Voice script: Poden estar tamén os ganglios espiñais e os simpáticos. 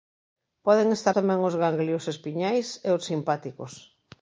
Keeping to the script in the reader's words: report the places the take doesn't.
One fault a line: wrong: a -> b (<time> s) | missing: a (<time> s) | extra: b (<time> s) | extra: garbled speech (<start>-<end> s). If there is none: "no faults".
no faults